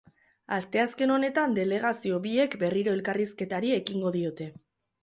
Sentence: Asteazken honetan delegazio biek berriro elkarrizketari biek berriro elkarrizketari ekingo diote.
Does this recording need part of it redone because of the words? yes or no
yes